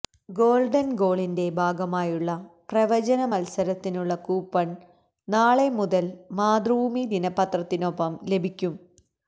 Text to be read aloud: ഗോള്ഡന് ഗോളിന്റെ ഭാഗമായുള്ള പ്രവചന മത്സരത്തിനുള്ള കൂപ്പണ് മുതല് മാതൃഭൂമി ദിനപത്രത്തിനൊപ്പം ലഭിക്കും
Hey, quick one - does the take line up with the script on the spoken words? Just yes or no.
no